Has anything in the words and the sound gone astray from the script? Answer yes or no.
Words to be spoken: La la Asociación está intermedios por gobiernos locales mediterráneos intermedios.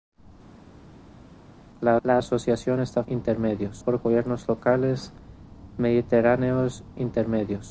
no